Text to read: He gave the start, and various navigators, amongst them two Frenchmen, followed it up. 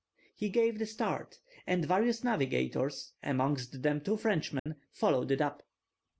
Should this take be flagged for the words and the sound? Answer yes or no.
yes